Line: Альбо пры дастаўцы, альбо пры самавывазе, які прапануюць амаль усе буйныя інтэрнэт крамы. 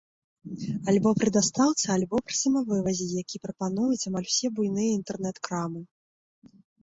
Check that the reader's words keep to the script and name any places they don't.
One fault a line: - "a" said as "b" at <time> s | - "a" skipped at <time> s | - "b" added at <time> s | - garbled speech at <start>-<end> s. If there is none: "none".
none